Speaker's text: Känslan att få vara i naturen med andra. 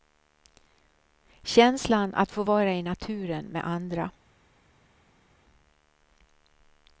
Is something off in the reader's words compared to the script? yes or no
no